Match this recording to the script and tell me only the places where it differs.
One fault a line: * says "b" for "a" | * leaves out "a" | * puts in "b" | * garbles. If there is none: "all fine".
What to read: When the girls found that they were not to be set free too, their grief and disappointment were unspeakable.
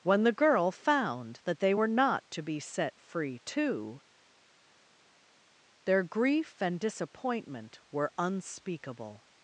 * says "girl" for "girls"